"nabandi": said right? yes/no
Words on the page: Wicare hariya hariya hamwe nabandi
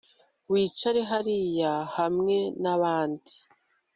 yes